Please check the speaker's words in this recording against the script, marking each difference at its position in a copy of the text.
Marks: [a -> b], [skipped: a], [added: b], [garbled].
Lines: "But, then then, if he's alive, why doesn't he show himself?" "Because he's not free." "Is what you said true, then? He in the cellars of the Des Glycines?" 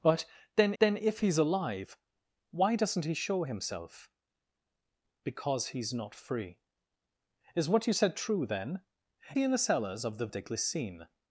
"But, then then, if he's alive, why doesn't he show himself?" "Because he's not free." "Is what you said true, then? He in the cellars of the Des Glycines?"